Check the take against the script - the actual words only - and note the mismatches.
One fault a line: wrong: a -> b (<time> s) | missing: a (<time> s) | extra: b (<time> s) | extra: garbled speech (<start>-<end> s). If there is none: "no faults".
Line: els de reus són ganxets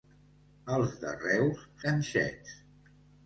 missing: són (1.6 s)